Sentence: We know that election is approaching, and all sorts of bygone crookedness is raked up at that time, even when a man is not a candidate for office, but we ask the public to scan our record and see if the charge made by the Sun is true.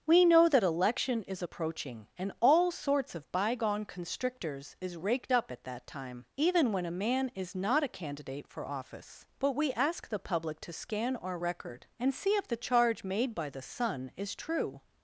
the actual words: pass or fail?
fail